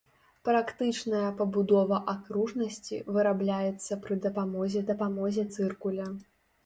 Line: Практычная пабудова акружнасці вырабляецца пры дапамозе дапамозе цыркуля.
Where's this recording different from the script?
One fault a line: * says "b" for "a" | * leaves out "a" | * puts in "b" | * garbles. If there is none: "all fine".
all fine